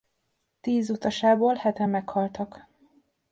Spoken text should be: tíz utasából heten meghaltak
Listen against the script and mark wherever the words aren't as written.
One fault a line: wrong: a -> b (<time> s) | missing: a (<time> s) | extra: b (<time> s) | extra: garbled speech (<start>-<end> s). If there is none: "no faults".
no faults